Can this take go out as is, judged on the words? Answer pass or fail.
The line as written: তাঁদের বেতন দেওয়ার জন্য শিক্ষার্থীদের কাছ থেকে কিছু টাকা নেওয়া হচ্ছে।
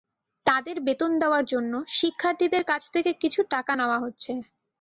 pass